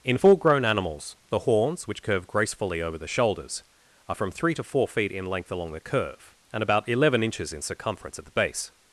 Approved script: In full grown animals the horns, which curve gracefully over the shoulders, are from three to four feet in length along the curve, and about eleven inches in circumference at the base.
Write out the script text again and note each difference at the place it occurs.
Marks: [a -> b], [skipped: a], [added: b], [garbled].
In full grown animals the horns, which curve gracefully over the shoulders, are from three to four feet in length along the curve, and about eleven inches in circumference at the base.